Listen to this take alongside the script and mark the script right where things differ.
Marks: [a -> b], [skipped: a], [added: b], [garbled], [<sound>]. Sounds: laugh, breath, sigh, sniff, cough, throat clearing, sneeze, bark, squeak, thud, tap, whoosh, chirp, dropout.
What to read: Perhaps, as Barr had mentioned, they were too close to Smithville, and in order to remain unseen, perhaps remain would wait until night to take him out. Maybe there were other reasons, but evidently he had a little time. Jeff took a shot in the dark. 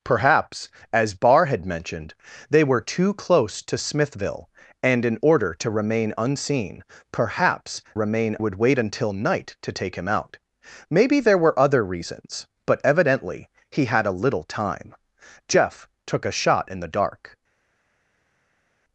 Perhaps, as Barr had mentioned, they were too close to Smithville, and in order to remain unseen, perhaps remain would wait until night to take him out. Maybe there were other reasons, but evidently he had a little time. Jeff took a shot in the dark.